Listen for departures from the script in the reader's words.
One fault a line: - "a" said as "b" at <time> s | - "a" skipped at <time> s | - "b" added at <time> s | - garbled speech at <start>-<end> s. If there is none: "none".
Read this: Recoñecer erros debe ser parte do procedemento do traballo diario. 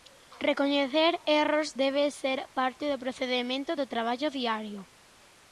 none